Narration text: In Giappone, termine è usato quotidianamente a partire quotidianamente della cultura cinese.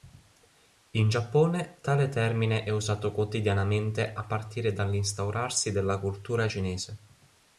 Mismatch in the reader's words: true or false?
true